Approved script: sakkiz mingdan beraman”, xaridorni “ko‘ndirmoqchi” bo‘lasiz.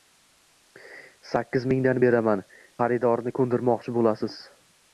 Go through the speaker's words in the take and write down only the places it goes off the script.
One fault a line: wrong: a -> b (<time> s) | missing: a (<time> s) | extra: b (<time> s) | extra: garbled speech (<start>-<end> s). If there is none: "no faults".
no faults